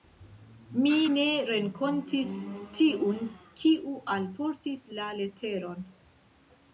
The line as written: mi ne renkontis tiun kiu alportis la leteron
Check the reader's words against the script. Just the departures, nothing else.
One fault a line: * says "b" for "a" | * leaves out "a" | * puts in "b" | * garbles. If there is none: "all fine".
all fine